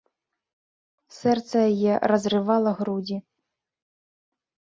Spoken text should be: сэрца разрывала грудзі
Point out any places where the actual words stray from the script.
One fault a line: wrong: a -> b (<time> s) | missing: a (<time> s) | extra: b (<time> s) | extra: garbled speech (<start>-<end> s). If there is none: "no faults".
extra: яе (1.7 s)